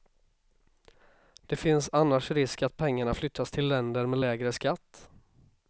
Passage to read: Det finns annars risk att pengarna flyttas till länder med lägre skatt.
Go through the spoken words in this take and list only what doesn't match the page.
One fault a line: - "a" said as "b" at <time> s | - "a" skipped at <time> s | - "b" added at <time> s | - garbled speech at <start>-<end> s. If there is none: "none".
none